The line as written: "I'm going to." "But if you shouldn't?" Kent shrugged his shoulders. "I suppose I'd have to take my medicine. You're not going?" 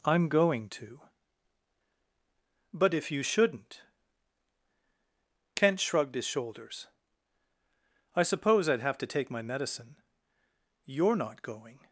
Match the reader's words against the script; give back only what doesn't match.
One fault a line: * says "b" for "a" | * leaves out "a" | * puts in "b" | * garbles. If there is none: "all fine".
all fine